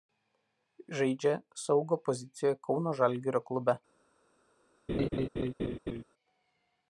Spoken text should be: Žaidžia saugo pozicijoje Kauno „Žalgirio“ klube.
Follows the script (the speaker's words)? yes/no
yes